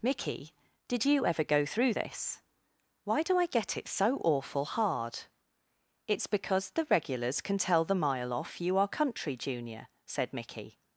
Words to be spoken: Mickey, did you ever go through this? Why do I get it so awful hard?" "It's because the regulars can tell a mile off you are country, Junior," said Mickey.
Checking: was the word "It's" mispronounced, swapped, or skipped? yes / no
no